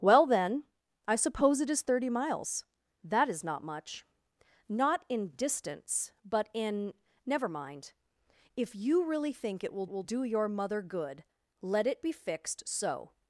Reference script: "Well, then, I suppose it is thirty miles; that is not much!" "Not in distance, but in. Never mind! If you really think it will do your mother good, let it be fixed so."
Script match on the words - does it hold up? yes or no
no